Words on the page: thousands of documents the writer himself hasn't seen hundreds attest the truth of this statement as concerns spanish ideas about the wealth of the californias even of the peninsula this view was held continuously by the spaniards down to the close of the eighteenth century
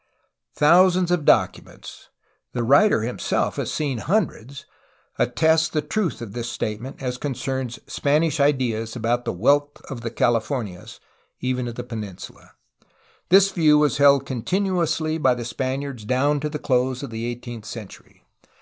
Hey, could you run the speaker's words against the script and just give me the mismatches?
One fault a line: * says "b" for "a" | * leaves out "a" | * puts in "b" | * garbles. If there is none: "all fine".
* says "has" for "hasn't"